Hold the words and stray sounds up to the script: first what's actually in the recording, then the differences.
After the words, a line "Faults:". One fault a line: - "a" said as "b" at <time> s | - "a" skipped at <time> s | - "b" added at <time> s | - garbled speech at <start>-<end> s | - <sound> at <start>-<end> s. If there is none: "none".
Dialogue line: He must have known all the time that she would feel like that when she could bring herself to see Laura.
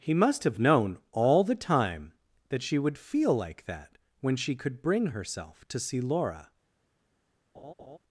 He must have known all the time that she would feel like that when she could bring herself to see Laura.
Faults:
- laugh at 7.5-8.0 s